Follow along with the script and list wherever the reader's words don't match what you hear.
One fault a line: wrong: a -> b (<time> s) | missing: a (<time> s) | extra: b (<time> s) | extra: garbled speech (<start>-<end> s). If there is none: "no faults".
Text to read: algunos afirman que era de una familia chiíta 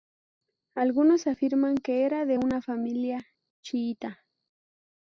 no faults